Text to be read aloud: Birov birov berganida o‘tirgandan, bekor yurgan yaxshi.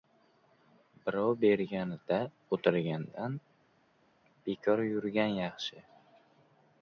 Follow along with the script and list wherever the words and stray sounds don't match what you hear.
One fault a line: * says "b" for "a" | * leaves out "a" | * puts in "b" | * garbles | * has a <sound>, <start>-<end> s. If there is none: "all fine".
* leaves out "birov"